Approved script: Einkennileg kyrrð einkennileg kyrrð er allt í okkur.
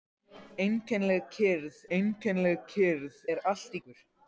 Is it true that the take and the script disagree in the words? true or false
false